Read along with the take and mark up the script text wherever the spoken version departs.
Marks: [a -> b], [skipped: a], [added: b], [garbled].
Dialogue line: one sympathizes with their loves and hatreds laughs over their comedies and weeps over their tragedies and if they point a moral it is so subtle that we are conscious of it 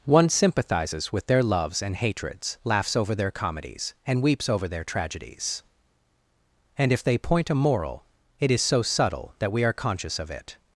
one sympathizes with their loves and hatreds laughs over their comedies and weeps over their tragedies and if they point a moral it is so subtle that we are conscious of it